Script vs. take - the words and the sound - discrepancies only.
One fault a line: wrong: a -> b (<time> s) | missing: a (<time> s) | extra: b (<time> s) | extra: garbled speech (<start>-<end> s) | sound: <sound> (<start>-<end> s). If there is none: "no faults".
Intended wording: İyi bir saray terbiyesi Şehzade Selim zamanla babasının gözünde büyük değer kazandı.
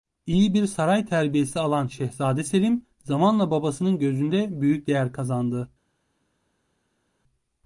extra: alan (1.6 s)